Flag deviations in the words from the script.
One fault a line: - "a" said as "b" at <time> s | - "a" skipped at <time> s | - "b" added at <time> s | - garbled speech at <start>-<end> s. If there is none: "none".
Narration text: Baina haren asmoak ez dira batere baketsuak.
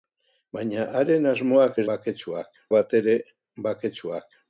- "dira" said as "baketsuak" at 1.9 s